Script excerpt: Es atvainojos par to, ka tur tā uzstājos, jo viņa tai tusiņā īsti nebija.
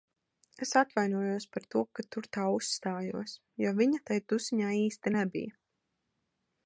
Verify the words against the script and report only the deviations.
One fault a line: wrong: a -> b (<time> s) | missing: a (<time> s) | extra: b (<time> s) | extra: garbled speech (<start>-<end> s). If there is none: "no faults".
no faults